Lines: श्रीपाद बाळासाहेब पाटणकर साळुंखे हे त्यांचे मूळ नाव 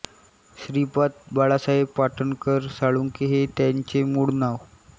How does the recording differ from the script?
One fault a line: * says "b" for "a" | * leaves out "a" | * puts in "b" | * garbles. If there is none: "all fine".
all fine